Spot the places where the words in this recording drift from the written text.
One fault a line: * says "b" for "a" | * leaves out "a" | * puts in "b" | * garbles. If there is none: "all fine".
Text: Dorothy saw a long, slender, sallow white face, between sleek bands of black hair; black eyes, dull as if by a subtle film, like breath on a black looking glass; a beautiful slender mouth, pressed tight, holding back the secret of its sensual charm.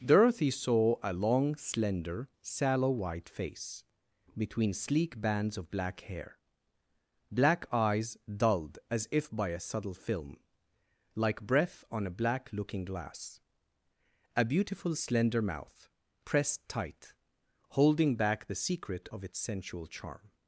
* says "dulled" for "dull"